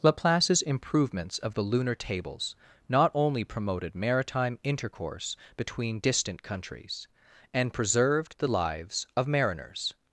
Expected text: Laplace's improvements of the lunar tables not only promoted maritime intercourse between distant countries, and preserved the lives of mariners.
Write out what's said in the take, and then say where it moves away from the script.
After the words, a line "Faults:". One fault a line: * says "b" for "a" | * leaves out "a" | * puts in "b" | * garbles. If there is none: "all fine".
Laplace's improvements of the lunar tables not only promoted maritime intercourse between distant countries, and preserved the lives of mariners.
Faults:
all fine